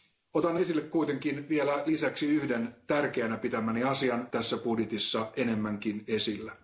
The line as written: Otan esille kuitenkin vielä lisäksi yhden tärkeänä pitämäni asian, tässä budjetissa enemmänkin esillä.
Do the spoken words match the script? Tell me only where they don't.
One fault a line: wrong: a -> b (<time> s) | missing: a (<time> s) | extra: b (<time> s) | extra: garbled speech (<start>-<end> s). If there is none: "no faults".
no faults